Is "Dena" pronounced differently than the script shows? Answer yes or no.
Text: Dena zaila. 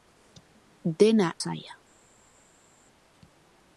no